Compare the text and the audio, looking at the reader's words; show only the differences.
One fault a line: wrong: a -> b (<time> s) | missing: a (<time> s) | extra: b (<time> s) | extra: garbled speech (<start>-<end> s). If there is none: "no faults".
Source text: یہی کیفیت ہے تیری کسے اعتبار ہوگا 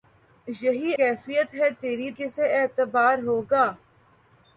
no faults